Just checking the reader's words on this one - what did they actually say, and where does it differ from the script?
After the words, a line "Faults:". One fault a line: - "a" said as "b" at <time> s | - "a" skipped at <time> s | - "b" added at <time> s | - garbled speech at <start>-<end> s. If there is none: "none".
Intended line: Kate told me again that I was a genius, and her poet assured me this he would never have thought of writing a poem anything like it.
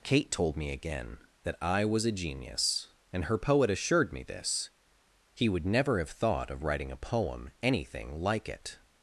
Kate told me again that I was a genius, and her poet assured me this he would never have thought of writing a poem anything like it.
Faults:
none